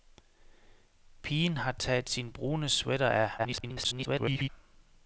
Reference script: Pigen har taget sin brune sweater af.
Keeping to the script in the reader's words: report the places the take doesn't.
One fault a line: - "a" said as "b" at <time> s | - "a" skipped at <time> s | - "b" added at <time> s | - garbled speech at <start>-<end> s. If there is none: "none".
- garbled speech at 3.4-4.5 s